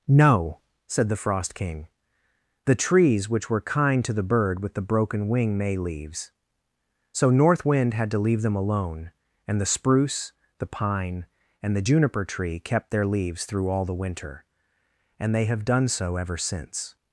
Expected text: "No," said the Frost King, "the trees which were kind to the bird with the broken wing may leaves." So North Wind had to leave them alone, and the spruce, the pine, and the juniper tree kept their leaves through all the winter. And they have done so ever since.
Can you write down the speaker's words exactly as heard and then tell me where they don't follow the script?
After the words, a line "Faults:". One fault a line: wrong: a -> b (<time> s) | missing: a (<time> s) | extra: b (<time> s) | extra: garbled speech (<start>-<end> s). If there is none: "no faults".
"No," said the Frost King, "the trees which were kind to the bird with the broken wing may leaves." So North Wind had to leave them alone, and the spruce, the pine, and the juniper tree kept their leaves through all the winter. And they have done so ever since.
Faults:
no faults